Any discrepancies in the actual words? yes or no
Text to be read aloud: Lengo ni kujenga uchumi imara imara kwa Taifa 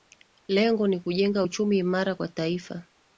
yes